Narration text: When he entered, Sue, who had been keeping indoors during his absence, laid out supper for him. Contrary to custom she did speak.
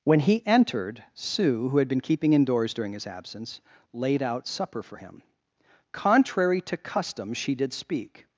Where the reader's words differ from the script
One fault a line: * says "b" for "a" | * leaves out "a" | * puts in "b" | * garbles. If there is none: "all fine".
all fine